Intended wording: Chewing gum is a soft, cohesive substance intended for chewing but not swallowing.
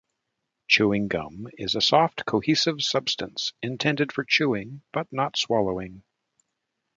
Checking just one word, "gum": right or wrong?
right